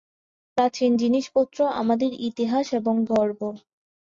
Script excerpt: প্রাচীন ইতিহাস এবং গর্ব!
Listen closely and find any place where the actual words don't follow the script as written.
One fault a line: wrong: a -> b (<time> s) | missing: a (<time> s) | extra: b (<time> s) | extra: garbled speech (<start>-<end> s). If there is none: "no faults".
extra: জিনিসপত্র আমাদের (1.0 s)